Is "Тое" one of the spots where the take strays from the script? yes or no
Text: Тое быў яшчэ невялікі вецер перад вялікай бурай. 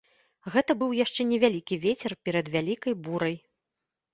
yes